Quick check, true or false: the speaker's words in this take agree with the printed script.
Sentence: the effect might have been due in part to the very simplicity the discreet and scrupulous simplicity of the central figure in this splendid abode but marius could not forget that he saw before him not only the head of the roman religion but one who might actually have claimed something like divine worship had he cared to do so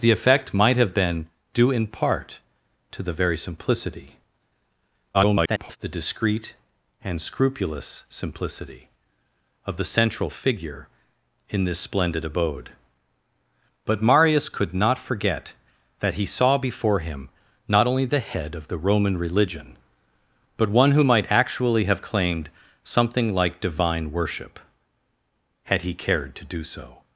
false